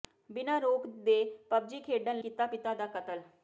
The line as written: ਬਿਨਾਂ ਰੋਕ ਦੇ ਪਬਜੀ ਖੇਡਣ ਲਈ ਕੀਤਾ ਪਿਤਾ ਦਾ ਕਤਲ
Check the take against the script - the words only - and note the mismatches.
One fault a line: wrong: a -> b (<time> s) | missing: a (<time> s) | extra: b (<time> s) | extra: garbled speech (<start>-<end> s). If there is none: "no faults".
missing: ਲਈ (2.2 s)